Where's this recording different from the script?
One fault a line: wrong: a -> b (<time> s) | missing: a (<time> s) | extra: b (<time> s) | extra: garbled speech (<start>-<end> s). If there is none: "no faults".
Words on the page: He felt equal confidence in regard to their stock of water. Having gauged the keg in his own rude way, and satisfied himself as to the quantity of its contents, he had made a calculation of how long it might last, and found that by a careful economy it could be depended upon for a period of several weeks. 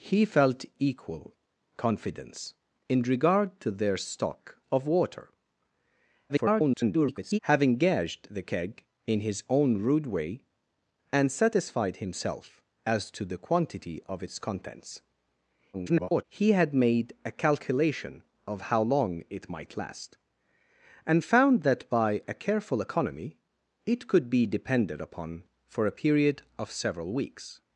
extra: garbled speech (6.3-7.4 s)
extra: garbled speech (15.7-16.2 s)